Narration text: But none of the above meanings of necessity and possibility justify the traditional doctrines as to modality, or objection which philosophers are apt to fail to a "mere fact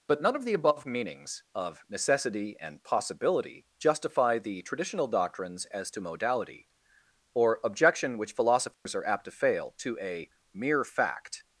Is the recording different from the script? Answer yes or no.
no